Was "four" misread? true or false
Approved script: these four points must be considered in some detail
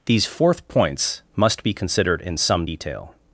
true